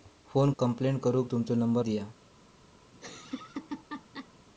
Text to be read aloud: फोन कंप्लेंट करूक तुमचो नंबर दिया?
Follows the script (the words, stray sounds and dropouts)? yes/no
no